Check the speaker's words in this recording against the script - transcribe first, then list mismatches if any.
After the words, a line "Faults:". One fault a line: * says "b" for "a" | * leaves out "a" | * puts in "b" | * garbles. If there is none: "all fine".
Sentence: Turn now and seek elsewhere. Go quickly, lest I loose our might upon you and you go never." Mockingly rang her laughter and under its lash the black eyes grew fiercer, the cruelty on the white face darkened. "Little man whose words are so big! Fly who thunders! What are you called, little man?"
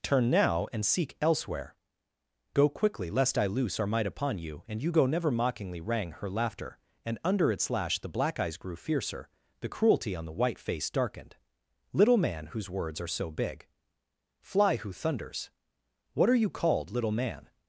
Turn now and seek elsewhere. Go quickly, lest I loose our might upon you and you go never." Mockingly rang her laughter and under its lash the black eyes grew fiercer, the cruelty on the white face darkened. "Little man whose words are so big! Fly who thunders! What are you called, little man?"
Faults:
all fine